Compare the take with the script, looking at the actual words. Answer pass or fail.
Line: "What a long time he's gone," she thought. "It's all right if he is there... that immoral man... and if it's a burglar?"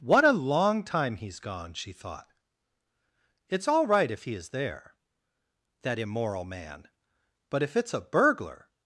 fail